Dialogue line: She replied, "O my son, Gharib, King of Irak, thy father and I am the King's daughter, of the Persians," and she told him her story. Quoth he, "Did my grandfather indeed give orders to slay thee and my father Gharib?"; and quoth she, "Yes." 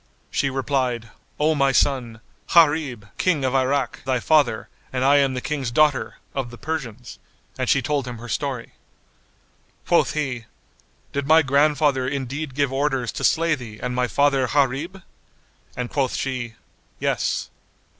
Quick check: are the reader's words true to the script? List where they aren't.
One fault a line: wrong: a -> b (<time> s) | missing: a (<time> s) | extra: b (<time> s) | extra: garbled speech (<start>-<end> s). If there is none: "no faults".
no faults